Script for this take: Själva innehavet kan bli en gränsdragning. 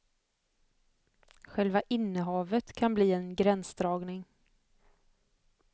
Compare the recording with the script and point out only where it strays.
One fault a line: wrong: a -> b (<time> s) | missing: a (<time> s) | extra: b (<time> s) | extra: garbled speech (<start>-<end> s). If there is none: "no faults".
no faults